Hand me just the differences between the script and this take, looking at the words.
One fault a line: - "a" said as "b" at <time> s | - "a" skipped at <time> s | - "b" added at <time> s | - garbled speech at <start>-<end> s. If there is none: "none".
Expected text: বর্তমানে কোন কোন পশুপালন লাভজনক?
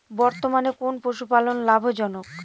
- "কোন" skipped at 0.9 s